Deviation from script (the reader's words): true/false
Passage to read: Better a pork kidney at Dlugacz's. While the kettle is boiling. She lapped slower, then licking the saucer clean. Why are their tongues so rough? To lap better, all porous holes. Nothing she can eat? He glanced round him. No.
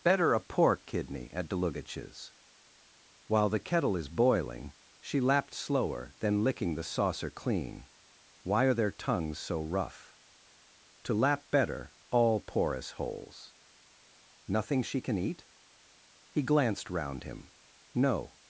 false